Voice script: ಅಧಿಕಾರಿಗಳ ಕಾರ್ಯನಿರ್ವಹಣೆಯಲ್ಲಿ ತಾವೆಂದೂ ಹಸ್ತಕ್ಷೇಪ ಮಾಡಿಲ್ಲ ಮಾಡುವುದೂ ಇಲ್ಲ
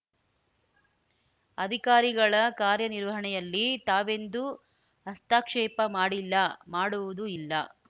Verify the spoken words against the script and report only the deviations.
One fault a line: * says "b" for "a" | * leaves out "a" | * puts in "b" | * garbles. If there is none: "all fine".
all fine